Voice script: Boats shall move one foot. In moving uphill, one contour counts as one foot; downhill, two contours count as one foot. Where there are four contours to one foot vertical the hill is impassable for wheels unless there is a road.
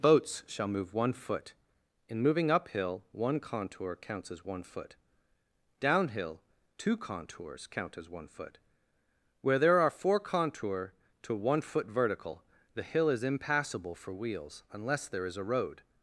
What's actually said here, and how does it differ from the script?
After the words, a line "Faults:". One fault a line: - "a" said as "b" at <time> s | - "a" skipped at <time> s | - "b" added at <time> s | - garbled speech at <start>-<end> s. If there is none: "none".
Boats shall move one foot. In moving uphill, one contour counts as one foot; downhill, two contours count as one foot. Where there are four contour to one foot vertical the hill is impassable for wheels unless there is a road.
Faults:
- "contours" said as "contour" at 10.2 s